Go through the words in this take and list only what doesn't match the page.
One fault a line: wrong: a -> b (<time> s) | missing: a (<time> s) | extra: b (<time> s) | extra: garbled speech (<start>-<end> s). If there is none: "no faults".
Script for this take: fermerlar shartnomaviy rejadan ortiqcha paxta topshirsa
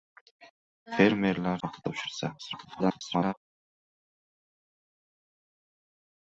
missing: shartnomaviy rejadan ortiqcha (1.6 s)
extra: garbled speech (2.4-3.3 s)